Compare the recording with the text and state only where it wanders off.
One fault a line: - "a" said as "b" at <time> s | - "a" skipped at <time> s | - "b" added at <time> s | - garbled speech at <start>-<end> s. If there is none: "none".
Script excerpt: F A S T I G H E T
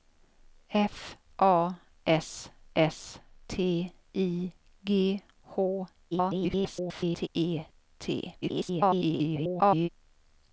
- "S" added at 2.8 s
- garbled speech at 6.1-7.3 s
- garbled speech at 8.4-9.9 s